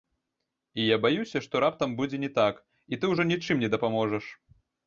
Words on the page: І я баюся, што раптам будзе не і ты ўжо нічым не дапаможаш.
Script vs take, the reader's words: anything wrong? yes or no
yes